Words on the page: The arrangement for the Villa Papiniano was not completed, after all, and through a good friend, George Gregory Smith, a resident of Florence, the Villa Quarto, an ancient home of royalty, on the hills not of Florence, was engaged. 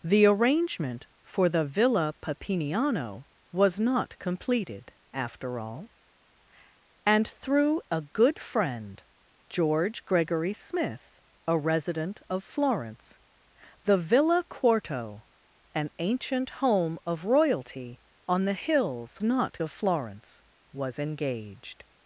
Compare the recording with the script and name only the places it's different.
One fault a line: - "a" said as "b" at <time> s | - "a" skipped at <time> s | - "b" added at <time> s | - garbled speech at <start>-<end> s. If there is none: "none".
none